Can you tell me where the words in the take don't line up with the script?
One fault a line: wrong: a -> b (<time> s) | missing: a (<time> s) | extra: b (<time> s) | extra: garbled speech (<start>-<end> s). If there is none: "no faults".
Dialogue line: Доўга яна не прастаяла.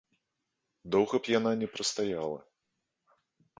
extra: б (1.2 s)